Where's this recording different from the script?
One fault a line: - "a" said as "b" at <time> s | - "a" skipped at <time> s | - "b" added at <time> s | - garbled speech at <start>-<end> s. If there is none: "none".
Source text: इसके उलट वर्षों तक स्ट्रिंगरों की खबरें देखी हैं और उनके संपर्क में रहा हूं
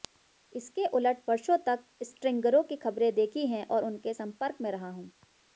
none